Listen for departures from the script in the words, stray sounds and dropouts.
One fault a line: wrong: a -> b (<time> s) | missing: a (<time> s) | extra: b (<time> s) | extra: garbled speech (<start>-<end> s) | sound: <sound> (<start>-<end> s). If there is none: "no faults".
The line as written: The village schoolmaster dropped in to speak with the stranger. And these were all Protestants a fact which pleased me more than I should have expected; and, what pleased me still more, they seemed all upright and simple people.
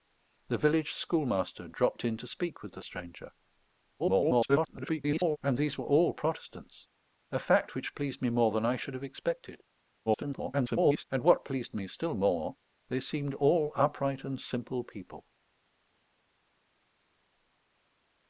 extra: garbled speech (4.0-5.4 s)
extra: garbled speech (10.1-11.0 s)